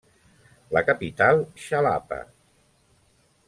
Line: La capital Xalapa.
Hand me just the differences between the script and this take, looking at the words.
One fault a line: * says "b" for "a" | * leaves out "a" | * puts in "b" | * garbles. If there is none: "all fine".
all fine